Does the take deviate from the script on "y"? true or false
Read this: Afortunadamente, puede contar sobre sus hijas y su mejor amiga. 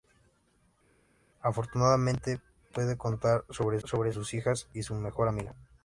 false